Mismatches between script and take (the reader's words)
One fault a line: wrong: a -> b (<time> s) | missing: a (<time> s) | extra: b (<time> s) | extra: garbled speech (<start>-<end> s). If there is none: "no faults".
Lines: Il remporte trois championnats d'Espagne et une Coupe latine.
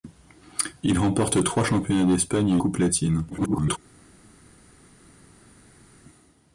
missing: une (2.6 s)
extra: garbled speech (3.3-3.8 s)